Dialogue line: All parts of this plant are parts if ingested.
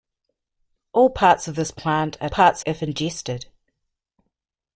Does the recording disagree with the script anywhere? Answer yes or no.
no